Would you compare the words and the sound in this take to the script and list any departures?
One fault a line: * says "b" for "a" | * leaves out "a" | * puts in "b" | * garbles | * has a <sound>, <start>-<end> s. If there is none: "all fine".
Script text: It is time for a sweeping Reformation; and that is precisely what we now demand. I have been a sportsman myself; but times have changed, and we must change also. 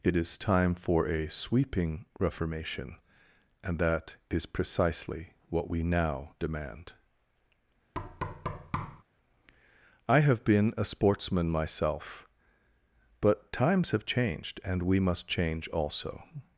* has a thud, 7.9-9.0 s